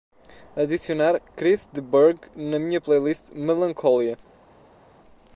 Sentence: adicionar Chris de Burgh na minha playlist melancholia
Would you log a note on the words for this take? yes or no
no